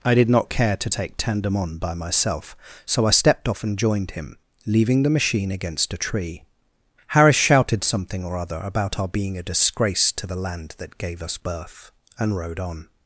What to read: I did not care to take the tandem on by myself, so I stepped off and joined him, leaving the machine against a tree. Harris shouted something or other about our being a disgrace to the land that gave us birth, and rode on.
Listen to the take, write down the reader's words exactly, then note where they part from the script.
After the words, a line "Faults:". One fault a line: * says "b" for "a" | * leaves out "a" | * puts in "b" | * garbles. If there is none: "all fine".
I did not care to take tandem on by myself, so I stepped off and joined him, leaving the machine against a tree. Harris shouted something or other about our being a disgrace to the land that gave us birth, and rode on.
Faults:
* leaves out "the"